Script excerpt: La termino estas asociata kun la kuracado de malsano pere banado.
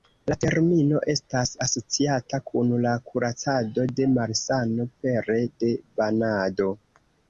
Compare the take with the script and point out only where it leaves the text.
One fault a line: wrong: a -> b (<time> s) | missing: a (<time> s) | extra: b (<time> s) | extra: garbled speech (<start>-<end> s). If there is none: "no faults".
extra: de (5.6 s)